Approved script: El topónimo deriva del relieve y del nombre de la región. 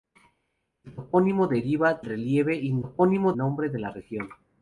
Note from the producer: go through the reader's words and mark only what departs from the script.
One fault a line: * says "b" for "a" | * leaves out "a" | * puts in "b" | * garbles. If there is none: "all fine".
* leaves out "del"
* says "topónimo" for "del"